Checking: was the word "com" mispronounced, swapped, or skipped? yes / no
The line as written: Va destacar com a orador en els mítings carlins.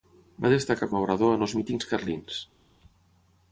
yes